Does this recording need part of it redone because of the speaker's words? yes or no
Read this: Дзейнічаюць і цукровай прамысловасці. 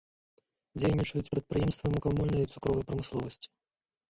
yes